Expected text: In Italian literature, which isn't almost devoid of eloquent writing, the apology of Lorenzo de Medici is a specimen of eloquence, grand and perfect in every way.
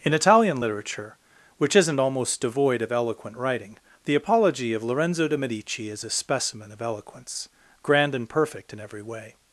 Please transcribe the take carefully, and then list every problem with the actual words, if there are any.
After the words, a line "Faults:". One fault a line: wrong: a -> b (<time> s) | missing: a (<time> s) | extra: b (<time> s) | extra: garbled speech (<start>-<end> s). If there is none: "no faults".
In Italian literature, which isn't almost devoid of eloquent writing, the apology of Lorenzo de Medici is a specimen of eloquence, grand and perfect in every way.
Faults:
no faults